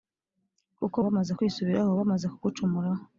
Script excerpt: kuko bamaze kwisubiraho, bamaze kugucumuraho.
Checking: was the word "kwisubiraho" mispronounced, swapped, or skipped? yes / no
no